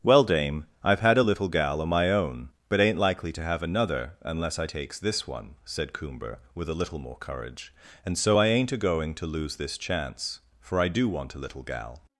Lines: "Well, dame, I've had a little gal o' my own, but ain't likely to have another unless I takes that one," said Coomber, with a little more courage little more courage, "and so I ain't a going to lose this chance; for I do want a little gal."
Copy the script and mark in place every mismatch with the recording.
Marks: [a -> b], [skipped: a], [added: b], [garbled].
"Well, dame, I've had a little gal o' my own, but ain't likely to have another unless I takes [that -> this] one," said Coomber, with a little more courage [skipped: little more courage,] "and so I ain't a going to lose this chance; for I do want a little gal."